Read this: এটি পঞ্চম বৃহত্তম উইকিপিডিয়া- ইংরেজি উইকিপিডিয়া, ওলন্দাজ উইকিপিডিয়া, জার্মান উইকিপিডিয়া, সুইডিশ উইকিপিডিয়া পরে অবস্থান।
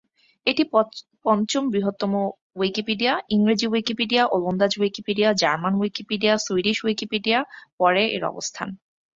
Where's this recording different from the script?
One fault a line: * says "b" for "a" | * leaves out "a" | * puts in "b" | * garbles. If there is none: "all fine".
* puts in "এর"